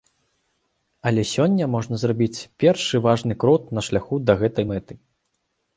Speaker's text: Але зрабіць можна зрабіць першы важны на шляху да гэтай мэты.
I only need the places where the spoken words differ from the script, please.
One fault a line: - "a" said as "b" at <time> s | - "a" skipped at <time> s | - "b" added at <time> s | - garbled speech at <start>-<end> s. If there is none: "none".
- "зрабіць" said as "сёння" at 1.3 s
- "крок" added at 3.5 s